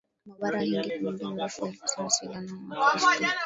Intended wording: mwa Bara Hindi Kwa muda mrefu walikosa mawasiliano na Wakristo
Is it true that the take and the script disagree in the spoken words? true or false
false